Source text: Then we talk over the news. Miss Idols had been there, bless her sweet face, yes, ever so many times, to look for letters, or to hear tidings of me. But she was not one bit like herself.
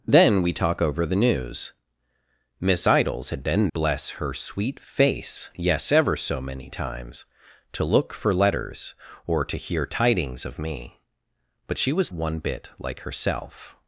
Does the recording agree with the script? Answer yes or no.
no